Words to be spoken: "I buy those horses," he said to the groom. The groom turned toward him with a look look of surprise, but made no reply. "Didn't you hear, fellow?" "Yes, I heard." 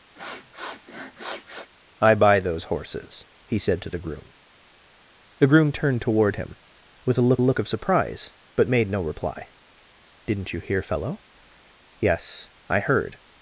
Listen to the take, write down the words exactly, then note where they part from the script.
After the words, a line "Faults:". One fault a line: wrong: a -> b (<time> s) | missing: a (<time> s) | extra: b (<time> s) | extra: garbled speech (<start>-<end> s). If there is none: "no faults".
"I buy those horses," he said to the groom. The groom turned toward him with a look look of surprise, but made no reply. "Didn't you hear, fellow?" "Yes, I heard."
Faults:
no faults